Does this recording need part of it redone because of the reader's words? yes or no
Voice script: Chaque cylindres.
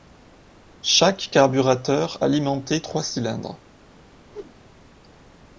yes